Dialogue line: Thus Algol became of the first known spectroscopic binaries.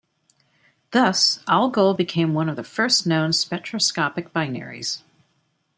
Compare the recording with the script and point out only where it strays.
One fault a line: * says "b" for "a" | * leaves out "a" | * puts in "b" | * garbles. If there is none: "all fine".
* puts in "one"